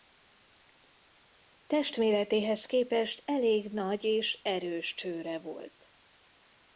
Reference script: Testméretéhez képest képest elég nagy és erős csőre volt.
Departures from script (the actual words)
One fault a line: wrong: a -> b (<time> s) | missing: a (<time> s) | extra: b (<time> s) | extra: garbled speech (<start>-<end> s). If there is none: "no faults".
missing: képest (3.2 s)